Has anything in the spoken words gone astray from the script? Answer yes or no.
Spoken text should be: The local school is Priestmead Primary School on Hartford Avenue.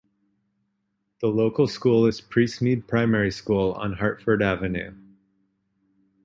no